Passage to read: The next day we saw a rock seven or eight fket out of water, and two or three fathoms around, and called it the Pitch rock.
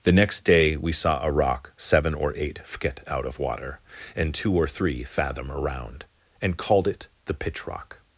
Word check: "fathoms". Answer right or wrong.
wrong